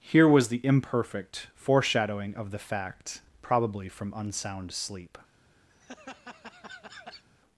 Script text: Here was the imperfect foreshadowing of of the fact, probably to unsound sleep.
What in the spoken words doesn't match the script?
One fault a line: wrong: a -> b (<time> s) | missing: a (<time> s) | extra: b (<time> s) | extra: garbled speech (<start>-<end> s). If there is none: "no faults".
missing: of (2.5 s)
wrong: to -> from (3.9 s)